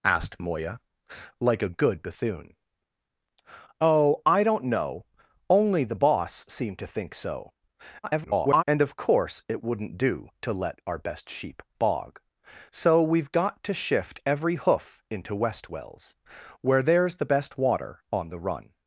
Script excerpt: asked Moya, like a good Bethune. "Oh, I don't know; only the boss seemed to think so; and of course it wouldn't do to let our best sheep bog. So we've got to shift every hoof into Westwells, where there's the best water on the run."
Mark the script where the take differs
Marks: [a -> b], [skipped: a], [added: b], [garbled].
asked Moya, like a good Bethune. "Oh, I don't know; only the boss seemed to think so; [garbled] and of course it wouldn't do to let our best sheep bog. So we've got to shift every hoof into Westwells, where there's the best water on the run."